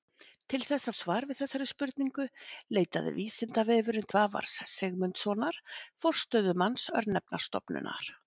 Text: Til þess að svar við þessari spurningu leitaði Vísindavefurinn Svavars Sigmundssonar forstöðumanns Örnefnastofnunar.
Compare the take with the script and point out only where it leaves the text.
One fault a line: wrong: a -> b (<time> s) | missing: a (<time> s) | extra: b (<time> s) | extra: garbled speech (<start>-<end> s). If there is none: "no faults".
no faults